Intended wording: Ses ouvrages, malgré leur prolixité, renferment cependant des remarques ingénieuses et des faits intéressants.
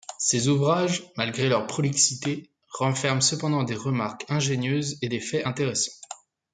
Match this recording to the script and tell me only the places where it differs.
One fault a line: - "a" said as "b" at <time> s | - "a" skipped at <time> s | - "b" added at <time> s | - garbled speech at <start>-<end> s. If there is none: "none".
none